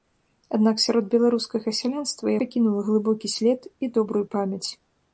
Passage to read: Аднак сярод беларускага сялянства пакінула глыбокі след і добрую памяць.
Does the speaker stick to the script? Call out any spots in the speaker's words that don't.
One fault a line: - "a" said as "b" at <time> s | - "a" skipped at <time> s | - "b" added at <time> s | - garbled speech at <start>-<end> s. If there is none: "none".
none